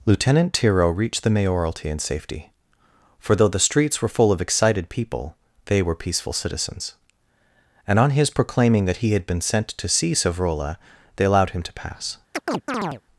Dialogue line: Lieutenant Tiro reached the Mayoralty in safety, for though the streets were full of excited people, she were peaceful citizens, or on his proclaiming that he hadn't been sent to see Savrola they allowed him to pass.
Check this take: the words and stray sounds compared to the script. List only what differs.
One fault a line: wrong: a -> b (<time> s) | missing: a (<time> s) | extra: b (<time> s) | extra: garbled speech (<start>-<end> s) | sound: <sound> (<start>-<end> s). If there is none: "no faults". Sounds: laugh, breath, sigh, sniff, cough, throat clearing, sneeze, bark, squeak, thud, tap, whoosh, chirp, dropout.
wrong: she -> they (5.7 s)
wrong: or -> and (7.8 s)
wrong: hadn't -> had (9.1 s)
sound: chirp (12.3-13.0 s)